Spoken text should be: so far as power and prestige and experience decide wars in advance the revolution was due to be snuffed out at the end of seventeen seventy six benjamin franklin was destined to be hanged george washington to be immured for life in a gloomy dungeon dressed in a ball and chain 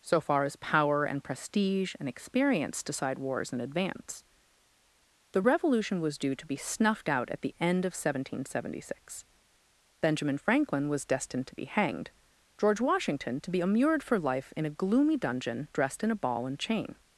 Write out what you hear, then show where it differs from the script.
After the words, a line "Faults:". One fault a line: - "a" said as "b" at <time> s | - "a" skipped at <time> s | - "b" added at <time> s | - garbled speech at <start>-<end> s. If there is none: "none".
so far as power and prestige and experience decide wars in advance the revolution was due to be snuffed out at the end of seventeen seventy six benjamin franklin was destined to be hanged george washington to be immured for life in a gloomy dungeon dressed in a ball and chain
Faults:
none